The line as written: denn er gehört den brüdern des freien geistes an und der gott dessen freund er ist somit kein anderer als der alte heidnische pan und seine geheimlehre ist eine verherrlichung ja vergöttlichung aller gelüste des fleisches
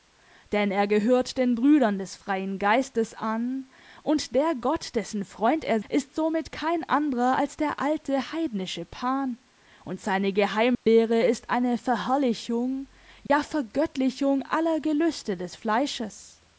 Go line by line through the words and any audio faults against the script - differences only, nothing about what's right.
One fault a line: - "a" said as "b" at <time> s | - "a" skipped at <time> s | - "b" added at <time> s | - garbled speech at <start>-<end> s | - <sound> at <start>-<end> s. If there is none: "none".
- dropout at 10.7-10.9 s
- dropout at 13.3-13.3 s